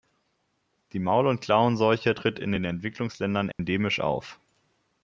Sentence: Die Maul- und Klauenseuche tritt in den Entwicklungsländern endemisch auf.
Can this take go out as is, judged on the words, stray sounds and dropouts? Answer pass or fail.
fail